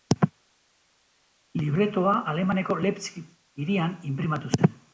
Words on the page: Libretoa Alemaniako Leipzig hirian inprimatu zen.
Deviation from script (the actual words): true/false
false